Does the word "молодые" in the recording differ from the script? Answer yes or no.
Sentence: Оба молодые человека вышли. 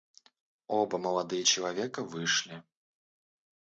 no